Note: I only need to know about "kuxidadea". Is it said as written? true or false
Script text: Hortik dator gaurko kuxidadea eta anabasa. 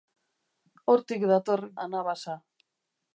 false